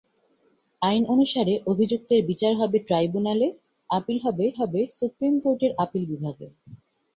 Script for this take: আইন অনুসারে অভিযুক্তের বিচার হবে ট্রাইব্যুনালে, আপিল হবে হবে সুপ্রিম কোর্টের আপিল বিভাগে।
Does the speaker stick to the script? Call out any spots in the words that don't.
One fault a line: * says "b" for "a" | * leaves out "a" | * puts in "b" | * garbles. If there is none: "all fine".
all fine